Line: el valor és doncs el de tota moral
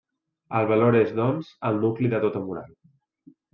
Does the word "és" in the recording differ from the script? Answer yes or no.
no